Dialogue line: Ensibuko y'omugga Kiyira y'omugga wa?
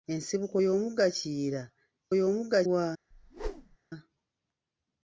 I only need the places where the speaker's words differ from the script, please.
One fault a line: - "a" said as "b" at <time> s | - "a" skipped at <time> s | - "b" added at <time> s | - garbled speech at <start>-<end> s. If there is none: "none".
none